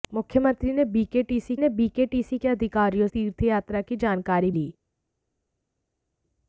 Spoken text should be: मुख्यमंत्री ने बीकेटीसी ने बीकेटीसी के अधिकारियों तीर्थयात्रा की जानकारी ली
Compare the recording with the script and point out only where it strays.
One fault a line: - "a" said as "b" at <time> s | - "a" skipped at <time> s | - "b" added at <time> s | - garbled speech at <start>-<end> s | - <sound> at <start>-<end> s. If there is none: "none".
none